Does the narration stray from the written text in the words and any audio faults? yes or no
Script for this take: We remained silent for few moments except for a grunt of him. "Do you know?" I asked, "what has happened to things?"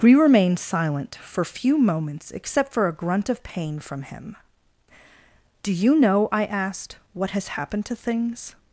yes